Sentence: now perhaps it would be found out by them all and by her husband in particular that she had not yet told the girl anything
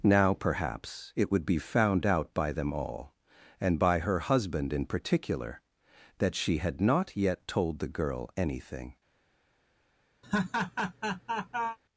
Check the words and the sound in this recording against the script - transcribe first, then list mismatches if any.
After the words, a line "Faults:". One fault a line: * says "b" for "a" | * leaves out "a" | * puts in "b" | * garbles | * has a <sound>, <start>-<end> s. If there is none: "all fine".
now perhaps it would be found out by them all and by her husband in particular that she had not yet told the girl anything
Faults:
* has a laugh, 10.2-11.8 s